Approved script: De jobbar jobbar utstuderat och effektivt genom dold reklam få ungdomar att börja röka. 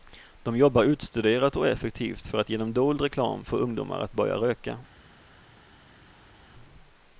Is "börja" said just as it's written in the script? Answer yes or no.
yes